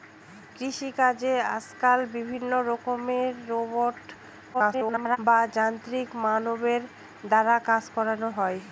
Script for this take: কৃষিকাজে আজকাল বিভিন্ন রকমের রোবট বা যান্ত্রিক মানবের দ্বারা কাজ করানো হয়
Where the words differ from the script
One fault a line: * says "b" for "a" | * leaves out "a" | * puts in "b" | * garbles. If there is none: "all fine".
* garbles